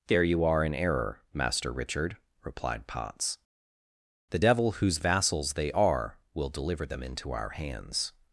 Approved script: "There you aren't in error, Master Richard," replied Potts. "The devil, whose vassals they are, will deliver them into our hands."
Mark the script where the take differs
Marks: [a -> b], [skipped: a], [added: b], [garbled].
"There you [aren't -> are] in error, Master Richard," replied Potts. "The devil, whose vassals they are, will deliver them into our hands."